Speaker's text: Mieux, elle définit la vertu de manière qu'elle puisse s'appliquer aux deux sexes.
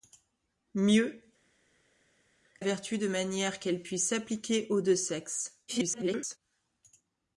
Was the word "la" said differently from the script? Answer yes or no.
yes